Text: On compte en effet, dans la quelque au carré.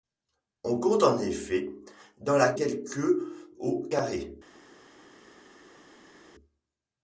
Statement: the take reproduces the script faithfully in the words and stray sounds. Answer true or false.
true